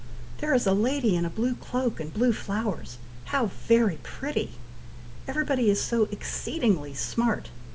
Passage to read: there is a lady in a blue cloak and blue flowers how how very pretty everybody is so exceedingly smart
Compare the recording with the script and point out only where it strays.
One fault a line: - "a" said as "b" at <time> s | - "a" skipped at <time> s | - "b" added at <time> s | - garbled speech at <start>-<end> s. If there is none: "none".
- "how" skipped at 3.5 s